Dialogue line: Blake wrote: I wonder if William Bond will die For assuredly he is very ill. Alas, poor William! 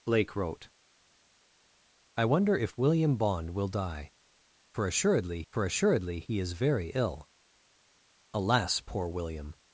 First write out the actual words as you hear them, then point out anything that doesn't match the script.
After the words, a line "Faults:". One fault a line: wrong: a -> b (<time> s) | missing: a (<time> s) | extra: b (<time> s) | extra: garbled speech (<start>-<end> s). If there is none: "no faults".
Blake wrote: I wonder if William Bond will die For assuredly For assuredly he is very ill. Alas, poor William!
Faults:
extra: For assuredly (5.5 s)